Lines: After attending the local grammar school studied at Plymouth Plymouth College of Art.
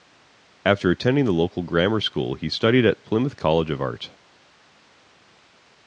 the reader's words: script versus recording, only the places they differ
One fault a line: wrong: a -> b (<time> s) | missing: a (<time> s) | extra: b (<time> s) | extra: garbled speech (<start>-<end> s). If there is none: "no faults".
extra: he (2.3 s)
missing: Plymouth (3.4 s)